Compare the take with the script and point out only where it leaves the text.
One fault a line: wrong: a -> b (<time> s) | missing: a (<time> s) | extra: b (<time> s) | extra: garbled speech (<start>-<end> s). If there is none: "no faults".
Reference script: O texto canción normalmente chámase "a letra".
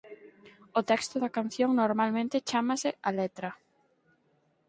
extra: da (1.2 s)